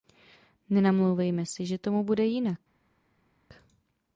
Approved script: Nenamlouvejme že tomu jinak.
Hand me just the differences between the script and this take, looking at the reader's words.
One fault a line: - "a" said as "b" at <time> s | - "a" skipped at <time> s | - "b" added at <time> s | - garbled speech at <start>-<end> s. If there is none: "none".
- "si" added at 1.4 s
- "bude" added at 2.0 s